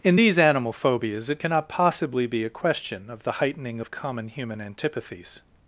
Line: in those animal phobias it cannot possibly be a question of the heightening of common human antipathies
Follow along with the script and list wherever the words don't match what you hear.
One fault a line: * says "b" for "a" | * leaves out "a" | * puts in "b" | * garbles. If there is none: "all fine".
* says "these" for "those"